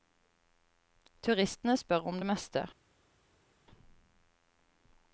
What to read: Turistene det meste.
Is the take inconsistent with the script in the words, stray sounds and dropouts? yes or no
yes